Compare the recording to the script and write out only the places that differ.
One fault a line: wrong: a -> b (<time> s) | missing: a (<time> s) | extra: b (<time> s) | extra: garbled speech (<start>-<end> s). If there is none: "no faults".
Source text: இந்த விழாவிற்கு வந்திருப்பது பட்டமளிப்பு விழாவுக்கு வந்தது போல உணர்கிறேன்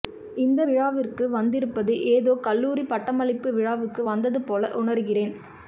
extra: ஏதோ கல்லூரி (2.1 s)